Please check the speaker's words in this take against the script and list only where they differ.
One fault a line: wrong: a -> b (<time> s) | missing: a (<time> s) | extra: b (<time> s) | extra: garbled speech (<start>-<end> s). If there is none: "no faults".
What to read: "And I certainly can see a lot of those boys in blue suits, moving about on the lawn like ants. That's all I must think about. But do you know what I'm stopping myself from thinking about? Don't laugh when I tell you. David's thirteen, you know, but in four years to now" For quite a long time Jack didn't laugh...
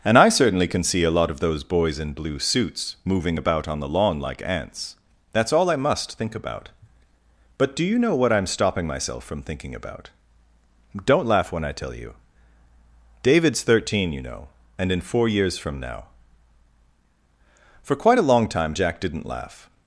wrong: but -> and (14.8 s)
wrong: to -> from (15.6 s)